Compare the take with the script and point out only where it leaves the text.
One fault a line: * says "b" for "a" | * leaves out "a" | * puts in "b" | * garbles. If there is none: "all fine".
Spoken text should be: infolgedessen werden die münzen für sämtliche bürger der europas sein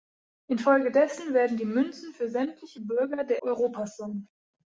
all fine